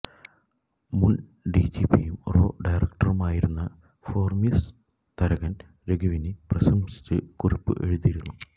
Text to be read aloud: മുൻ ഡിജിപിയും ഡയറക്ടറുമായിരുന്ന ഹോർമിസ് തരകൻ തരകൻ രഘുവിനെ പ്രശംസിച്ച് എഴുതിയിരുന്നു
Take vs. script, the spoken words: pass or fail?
fail